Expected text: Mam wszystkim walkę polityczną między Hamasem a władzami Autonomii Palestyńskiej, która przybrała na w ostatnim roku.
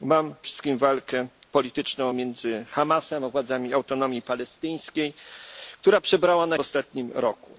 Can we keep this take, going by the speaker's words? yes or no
yes